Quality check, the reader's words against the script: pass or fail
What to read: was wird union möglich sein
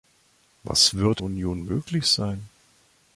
pass